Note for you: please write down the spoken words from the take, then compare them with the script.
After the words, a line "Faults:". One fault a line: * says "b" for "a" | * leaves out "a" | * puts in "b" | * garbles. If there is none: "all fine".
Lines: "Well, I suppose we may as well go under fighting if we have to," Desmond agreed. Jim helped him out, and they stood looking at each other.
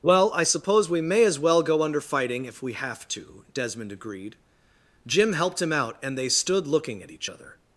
"Well, I suppose we may as well go under fighting if we have to," Desmond agreed. Jim helped him out, and they stood looking at each other.
Faults:
all fine